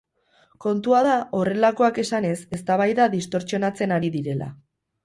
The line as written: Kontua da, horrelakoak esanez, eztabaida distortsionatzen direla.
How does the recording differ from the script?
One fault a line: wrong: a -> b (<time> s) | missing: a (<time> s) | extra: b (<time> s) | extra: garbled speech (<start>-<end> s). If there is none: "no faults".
extra: ari (4.0 s)